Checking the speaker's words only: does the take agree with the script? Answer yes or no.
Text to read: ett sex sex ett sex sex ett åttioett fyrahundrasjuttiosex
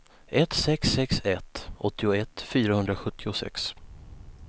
no